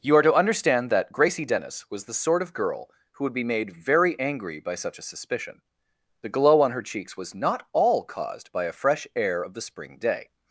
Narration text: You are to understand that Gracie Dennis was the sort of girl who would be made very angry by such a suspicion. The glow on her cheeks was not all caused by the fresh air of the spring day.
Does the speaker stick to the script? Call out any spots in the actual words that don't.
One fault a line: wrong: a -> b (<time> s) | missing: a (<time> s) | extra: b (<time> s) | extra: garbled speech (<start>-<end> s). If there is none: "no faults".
wrong: the -> a (8.6 s)